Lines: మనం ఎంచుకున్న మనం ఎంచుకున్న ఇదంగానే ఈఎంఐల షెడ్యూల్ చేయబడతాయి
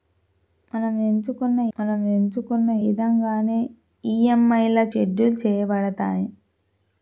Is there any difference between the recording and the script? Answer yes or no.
no